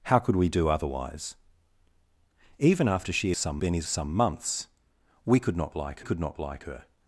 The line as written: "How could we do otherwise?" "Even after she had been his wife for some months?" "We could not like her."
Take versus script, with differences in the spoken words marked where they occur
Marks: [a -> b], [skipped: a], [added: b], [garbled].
"How could we do otherwise?" "Even after she [had -> some] been his [skipped: wife for] some months?" "We could not like [added: could not like] her."